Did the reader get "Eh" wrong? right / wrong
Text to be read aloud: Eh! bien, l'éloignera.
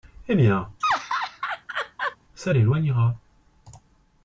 right